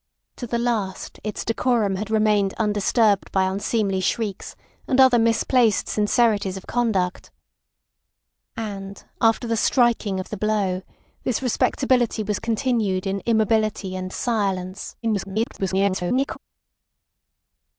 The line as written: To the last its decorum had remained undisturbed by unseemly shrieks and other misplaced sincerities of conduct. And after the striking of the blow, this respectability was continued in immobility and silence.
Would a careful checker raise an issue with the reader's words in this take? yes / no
yes